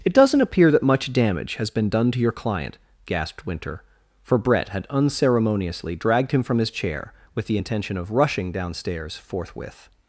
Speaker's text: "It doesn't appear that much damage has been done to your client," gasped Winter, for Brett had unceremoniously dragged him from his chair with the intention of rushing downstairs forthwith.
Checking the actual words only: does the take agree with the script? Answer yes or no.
yes